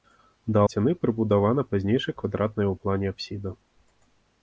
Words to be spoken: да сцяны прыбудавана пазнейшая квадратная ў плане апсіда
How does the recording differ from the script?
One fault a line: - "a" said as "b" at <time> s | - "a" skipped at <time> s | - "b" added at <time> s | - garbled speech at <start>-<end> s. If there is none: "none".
none